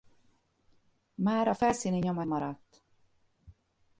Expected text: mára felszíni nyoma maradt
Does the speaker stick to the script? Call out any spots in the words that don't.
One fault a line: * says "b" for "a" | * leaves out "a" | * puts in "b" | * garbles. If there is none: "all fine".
all fine